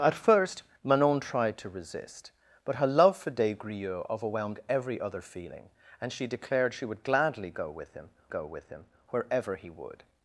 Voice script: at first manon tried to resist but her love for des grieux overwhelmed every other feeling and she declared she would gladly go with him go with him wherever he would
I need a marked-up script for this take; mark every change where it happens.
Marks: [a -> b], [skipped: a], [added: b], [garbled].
at first manon tried to resist but her love for des grieux overwhelmed every other feeling and she declared she would gladly go with him go with him wherever he would